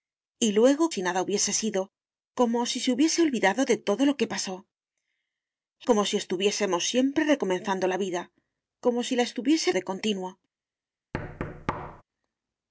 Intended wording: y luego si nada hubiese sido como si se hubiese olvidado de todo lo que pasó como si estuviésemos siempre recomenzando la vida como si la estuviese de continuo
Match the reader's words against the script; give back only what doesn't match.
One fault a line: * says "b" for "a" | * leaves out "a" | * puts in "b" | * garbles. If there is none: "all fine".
all fine